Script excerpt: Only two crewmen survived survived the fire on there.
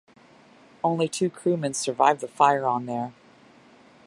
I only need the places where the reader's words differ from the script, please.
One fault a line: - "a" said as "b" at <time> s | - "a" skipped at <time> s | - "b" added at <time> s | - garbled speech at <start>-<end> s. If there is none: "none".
- "survived" skipped at 2.2 s